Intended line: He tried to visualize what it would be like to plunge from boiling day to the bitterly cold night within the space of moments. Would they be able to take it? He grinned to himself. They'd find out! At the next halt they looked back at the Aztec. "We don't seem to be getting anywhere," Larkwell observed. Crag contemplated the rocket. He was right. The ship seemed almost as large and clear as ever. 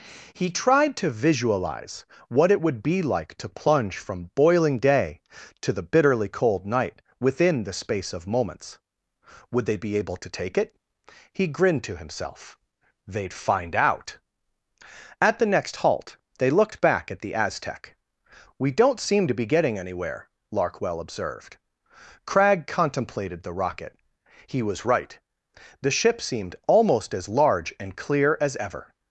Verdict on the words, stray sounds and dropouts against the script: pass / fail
pass